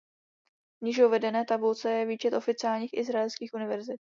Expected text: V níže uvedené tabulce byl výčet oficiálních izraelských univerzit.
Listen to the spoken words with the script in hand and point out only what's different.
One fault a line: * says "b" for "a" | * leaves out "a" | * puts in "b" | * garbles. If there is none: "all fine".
* says "je" for "byl"